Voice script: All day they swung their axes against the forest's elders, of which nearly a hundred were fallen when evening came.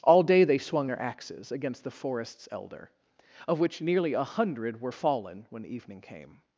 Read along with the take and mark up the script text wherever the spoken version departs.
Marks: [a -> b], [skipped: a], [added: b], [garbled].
All day they swung their axes against the forest's [elders, -> elder] of which nearly a hundred were fallen when evening came.